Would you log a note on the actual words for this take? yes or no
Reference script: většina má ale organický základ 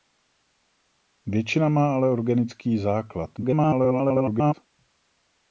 yes